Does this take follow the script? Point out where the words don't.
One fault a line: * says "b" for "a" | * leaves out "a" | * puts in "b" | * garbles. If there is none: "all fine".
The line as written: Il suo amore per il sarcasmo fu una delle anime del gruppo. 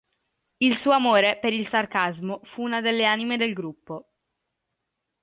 all fine